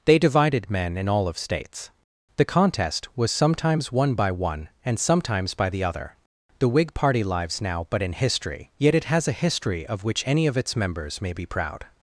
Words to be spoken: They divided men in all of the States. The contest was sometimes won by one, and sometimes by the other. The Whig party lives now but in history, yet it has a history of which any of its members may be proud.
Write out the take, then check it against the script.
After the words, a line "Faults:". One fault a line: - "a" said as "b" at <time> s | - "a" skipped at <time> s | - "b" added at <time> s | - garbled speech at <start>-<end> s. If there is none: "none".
They divided men in all of States. The contest was sometimes won by one, and sometimes by the other. The Whig party lives now but in history, yet it has a history of which any of its members may be proud.
Faults:
- "the" skipped at 1.4 s